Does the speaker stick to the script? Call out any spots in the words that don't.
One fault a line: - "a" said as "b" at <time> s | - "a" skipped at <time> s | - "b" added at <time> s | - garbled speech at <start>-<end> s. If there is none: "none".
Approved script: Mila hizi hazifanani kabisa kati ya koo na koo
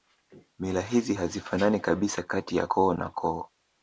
none